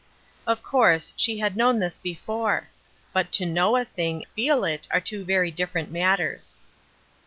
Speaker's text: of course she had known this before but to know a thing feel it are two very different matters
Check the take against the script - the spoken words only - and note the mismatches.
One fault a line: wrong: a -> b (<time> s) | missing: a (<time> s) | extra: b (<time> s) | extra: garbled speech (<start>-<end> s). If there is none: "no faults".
no faults